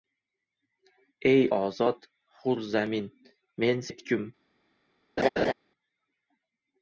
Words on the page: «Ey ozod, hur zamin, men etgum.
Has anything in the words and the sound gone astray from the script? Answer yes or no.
yes